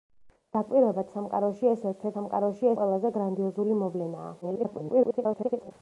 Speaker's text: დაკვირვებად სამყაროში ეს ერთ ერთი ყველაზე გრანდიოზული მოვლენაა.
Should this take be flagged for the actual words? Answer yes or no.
yes